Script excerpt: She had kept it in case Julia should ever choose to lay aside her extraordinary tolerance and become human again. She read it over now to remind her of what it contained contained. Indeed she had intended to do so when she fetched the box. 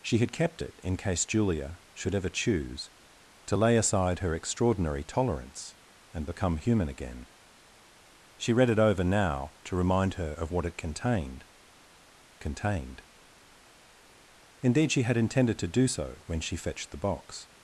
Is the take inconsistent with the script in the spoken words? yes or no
no